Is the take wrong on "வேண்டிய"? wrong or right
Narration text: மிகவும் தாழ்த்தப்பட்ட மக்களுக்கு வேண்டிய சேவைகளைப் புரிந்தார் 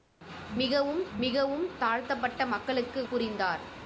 wrong